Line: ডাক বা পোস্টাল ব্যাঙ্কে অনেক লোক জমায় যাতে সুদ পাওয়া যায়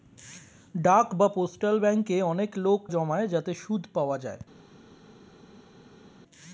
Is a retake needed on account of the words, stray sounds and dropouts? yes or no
no